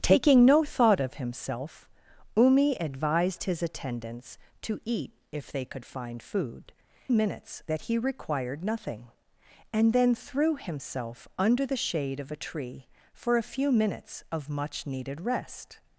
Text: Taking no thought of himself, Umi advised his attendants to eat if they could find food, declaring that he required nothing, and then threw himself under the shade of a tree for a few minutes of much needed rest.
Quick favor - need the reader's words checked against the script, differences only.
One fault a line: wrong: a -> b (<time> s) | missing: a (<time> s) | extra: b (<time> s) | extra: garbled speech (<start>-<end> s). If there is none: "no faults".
wrong: declaring -> minutes (7.1 s)